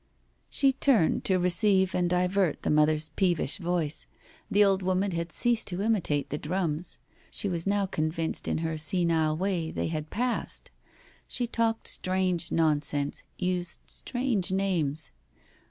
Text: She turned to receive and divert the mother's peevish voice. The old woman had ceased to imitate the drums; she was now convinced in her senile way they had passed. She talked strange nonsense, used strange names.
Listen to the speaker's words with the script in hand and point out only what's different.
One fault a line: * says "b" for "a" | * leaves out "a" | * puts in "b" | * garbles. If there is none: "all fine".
all fine